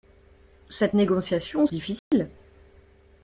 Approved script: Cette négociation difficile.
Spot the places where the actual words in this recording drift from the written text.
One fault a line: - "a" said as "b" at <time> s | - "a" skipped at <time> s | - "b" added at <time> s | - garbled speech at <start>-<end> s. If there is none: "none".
none